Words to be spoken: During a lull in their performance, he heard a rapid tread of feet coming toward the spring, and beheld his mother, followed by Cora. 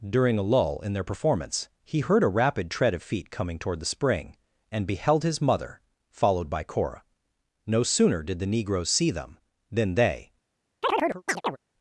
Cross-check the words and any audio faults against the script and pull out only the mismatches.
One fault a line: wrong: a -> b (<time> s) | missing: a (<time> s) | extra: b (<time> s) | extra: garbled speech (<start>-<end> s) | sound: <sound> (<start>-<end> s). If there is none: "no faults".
extra: No sooner did the negroes see them than they (7.7 s)
sound: chirp (10.8-11.6 s)